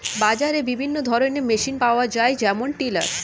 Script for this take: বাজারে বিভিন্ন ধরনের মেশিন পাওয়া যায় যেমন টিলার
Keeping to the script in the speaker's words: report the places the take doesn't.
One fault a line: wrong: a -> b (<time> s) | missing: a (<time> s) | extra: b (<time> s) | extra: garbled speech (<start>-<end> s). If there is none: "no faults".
no faults